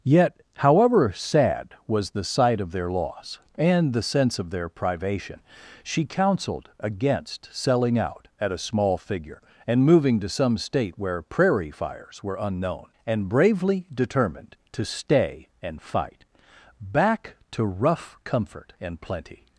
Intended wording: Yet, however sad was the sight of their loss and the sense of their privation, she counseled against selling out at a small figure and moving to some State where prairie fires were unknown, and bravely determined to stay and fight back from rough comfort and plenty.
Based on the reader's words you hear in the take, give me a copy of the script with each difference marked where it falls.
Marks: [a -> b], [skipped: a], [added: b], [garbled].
Yet, however sad was the sight of their loss and the sense of their privation, she counseled against selling out at a small figure and moving to some State where prairie fires were unknown, and bravely determined to stay and fight back [from -> to] rough comfort and plenty.